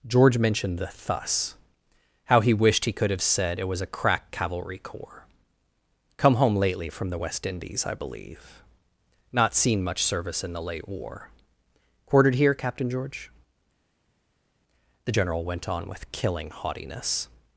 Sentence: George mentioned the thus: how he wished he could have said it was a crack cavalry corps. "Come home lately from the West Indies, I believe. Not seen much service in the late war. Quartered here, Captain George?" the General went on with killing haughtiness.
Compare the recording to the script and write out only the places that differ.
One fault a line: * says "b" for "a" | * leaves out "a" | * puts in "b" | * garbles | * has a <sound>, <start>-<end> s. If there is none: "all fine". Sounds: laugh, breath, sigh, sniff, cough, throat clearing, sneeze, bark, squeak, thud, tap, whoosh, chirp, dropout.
all fine